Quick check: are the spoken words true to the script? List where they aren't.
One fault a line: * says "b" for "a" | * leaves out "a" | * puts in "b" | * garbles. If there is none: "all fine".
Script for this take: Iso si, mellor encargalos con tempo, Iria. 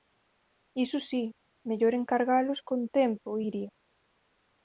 all fine